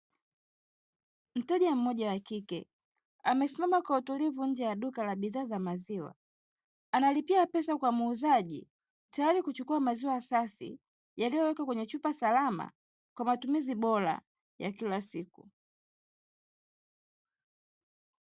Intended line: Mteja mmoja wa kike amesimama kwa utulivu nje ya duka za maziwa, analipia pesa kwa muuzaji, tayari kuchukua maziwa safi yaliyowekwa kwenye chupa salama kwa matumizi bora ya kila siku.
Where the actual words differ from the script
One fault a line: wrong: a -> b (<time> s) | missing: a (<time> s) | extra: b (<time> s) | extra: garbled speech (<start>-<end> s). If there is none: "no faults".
extra: la bidhaa (5.0 s)